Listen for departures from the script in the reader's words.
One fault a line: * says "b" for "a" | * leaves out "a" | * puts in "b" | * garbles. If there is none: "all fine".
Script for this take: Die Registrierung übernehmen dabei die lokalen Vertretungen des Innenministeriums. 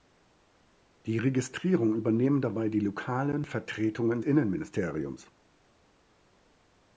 * leaves out "des"